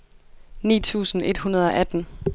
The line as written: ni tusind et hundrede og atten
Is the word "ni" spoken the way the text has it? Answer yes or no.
yes